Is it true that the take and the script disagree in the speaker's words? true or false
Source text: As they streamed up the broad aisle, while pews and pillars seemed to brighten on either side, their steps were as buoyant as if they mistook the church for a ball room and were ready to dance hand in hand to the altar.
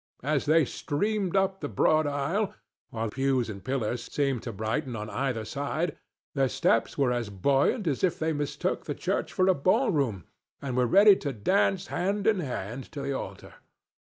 false